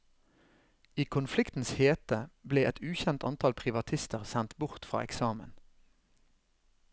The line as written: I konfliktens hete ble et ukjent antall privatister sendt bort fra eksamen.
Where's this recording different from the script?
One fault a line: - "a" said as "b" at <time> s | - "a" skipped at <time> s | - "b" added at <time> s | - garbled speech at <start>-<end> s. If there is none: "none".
none